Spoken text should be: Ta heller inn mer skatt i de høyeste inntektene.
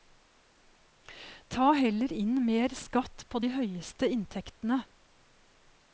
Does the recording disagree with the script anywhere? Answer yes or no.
yes